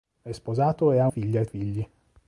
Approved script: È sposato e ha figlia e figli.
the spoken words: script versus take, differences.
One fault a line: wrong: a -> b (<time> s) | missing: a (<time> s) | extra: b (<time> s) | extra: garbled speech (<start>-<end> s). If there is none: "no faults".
no faults